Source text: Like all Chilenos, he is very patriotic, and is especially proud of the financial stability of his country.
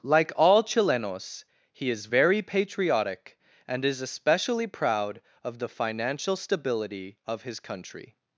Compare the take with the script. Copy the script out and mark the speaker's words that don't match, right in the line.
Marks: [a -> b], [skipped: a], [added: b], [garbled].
Like all Chilenos, he is very patriotic, and is especially proud of the financial stability of his country.